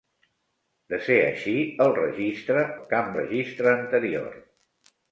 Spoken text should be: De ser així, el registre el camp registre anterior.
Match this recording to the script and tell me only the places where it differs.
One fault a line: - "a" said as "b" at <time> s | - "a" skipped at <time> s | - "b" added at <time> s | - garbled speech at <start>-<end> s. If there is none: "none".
none